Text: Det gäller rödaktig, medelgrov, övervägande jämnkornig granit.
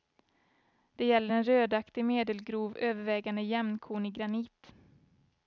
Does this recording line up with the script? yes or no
no